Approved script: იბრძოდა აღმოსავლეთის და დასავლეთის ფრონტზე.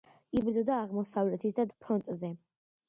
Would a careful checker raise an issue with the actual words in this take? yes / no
yes